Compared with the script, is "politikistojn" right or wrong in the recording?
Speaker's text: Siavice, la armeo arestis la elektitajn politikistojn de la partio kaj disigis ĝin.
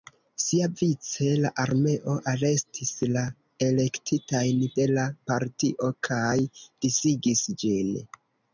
wrong